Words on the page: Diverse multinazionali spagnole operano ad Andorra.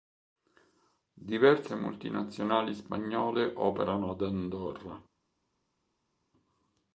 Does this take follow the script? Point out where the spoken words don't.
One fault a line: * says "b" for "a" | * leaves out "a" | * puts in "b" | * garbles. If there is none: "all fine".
all fine